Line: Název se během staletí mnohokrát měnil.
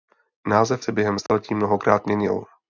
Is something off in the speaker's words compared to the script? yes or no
no